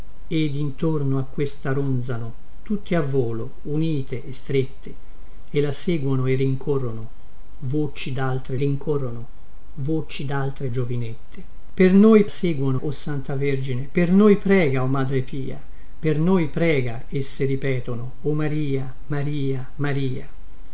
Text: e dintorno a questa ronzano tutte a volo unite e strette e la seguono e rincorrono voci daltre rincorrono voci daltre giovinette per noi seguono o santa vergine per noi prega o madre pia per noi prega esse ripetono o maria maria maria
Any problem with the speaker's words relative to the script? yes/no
no